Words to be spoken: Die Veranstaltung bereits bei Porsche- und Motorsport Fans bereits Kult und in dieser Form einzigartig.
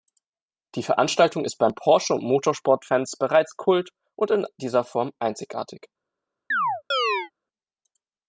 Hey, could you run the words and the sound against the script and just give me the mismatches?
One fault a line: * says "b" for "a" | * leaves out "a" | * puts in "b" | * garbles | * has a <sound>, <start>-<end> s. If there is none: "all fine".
* says "ist" for "bereits"
* has a chirp, 6.5-7.3 s